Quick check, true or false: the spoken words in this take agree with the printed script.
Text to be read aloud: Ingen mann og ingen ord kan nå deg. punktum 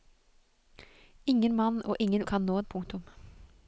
false